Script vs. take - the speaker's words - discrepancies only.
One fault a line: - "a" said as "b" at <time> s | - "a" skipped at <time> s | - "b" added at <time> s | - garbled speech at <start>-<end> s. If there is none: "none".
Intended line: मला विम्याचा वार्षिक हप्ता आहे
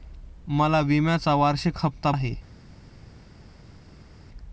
none